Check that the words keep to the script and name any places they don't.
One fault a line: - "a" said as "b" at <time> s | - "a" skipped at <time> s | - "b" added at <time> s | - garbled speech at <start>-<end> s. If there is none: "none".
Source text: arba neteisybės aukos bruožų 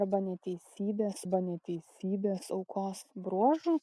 - "arba neteisybės" added at 1.2 s